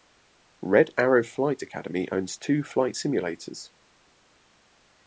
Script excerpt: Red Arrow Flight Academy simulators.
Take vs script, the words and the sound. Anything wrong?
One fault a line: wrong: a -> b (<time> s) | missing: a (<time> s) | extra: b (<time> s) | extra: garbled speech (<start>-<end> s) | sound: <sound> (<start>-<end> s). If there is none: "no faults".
extra: owns two flight (2.1 s)